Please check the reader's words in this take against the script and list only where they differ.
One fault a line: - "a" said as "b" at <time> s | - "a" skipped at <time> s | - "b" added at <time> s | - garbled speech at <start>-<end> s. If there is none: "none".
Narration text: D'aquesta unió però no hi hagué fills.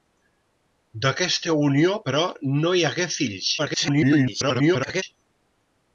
- garbled speech at 3.6-5.0 s